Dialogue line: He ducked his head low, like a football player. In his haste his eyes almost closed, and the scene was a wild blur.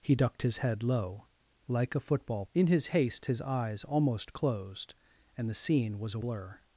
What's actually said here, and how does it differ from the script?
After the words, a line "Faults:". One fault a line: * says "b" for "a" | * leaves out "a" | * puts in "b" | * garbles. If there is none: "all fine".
He ducked his head low, like a football. In his haste his eyes almost closed, and the scene was a blur.
Faults:
* leaves out "player"
* leaves out "wild"